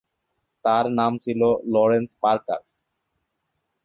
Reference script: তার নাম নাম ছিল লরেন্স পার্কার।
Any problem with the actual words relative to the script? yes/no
yes